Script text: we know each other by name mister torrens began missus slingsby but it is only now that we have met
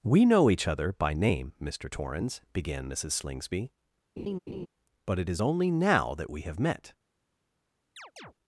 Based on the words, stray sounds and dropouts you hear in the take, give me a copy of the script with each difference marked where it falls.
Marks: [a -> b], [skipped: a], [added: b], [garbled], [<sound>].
we know each other by name mister torrens began missus slingsby [laugh] but it is only now that we have met [chirp]